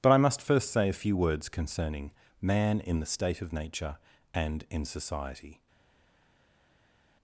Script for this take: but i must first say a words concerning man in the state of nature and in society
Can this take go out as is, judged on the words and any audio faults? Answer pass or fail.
fail